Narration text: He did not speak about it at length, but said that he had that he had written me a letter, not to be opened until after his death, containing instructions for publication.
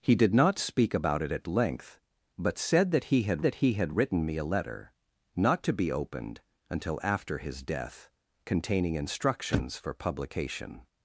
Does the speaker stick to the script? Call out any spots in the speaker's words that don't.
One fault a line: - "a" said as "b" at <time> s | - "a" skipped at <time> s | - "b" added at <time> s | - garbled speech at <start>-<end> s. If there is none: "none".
none